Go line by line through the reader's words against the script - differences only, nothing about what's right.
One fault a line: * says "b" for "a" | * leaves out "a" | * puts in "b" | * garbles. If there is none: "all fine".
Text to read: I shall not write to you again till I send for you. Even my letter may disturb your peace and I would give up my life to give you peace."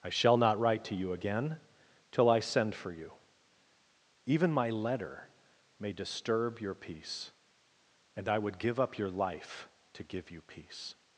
* says "your" for "my"